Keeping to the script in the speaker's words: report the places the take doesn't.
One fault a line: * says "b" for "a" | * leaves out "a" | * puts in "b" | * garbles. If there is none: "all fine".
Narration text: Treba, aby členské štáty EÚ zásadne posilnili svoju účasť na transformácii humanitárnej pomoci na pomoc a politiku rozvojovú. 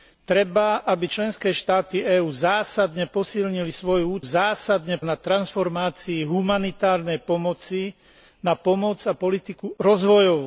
* says "zásadne" for "účasť"